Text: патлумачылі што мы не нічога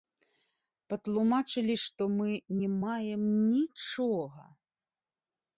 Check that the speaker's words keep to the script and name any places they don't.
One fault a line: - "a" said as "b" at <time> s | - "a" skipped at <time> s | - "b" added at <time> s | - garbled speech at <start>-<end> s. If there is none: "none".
- "маем" added at 2.8 s